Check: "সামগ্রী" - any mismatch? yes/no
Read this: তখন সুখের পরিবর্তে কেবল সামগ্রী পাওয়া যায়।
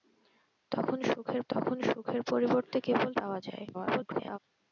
yes